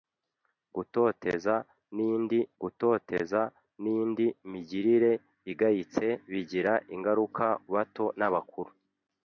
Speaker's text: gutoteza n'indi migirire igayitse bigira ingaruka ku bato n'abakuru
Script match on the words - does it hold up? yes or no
no